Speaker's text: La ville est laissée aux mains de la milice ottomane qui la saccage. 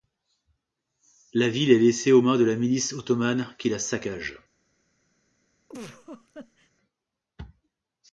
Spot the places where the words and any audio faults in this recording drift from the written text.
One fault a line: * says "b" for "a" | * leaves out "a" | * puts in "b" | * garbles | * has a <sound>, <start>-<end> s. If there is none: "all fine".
* has a laugh, 5.7-6.7 s